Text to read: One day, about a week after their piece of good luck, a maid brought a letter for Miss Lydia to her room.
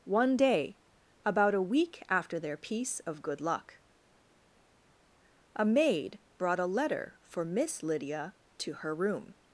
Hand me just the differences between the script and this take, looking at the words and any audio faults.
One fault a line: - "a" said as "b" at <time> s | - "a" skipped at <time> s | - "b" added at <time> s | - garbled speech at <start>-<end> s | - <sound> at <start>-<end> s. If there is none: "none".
none